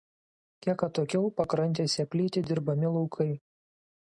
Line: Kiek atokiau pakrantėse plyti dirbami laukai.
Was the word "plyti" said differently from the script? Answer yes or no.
no